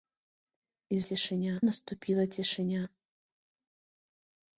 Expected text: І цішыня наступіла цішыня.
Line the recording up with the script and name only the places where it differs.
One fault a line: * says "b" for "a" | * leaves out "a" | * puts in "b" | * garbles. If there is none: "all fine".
all fine